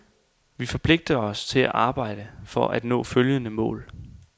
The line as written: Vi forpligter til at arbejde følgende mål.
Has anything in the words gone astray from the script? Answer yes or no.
yes